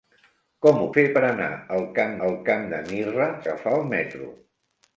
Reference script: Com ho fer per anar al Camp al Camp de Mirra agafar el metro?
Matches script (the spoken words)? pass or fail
pass